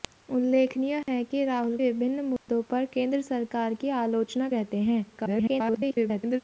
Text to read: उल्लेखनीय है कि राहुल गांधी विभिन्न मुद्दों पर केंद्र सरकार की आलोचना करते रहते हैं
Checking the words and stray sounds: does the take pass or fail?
fail